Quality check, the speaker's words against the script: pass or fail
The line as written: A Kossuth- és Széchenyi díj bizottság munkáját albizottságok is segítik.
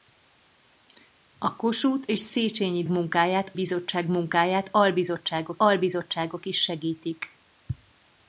fail